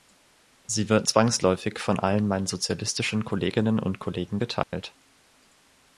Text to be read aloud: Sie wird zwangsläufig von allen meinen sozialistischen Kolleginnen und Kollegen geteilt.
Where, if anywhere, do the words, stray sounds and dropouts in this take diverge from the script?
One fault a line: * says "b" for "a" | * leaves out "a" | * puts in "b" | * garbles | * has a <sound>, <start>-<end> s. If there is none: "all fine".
* has a dropout, 4.6-4.7 s